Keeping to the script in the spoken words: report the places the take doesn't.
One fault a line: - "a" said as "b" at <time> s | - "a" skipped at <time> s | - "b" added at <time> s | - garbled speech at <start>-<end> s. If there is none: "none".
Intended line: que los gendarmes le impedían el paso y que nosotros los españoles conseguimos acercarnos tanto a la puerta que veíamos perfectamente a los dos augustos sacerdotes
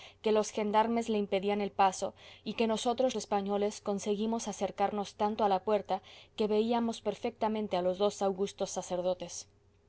- "los" skipped at 3.2 s